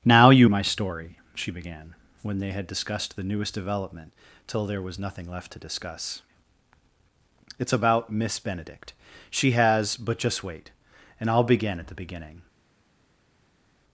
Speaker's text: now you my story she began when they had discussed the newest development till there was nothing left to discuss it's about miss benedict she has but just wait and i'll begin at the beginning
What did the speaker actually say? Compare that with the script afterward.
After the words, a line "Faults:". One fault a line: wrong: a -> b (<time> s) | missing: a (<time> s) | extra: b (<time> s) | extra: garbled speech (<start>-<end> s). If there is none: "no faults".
now you my story she began when they had discussed the newest development till there was nothing left to discuss it's about miss benedict she has but just wait and i'll begin at the beginning
Faults:
no faults